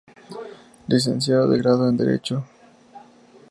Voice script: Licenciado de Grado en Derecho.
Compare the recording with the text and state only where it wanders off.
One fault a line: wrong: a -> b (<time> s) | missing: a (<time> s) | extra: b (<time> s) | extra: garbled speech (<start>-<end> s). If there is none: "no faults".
no faults